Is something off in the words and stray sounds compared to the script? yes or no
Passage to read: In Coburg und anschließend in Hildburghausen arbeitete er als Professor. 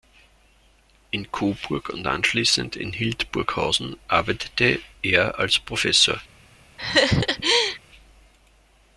yes